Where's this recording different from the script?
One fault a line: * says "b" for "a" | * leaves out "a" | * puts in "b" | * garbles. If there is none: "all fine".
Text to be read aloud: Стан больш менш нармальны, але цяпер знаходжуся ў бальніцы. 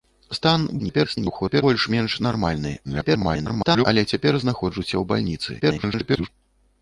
* garbles
* garbles
* garbles